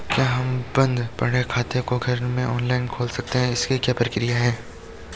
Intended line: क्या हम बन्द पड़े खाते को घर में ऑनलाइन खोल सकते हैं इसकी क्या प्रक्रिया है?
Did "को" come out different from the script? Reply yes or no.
no